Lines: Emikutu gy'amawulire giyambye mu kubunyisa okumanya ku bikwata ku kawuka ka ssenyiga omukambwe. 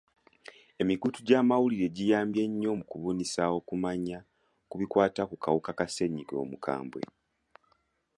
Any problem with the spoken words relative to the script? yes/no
yes